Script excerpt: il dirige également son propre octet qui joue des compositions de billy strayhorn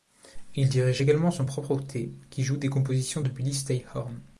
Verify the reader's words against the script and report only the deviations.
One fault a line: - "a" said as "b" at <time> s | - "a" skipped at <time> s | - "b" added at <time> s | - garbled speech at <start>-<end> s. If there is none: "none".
none